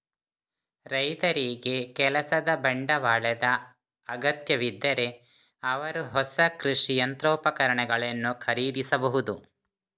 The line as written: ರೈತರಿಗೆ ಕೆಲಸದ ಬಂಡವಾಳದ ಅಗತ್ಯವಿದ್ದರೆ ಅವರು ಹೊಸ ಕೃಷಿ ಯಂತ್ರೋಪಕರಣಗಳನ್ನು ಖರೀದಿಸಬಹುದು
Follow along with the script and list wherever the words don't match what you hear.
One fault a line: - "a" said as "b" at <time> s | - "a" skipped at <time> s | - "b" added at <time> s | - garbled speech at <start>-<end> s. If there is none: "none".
none